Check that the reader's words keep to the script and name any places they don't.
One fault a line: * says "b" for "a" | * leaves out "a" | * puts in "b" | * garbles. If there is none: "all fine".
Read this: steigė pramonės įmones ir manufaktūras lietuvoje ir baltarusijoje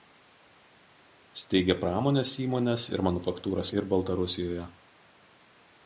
* leaves out "lietuvoje"